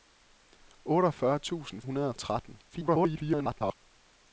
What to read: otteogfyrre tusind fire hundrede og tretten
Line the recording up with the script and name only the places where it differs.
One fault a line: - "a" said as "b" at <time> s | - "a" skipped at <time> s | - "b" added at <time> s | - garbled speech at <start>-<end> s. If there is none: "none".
- "fire" skipped at 1.8 s
- garbled speech at 2.7-3.7 s